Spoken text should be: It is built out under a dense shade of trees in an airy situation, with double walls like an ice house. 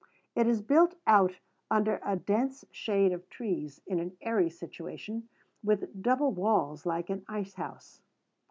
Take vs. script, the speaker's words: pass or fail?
pass